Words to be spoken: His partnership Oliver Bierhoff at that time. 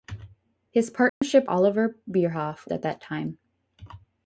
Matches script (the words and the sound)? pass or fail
fail